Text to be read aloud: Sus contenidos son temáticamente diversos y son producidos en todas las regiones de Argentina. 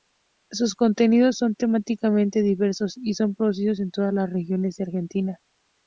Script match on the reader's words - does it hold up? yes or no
yes